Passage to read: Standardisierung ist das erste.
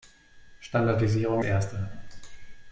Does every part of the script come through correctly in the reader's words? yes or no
no